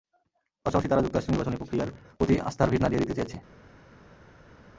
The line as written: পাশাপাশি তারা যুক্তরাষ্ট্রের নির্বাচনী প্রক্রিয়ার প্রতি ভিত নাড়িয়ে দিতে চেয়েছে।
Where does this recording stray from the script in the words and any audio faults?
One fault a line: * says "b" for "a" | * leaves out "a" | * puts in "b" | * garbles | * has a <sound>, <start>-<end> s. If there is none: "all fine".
* puts in "আস্থার"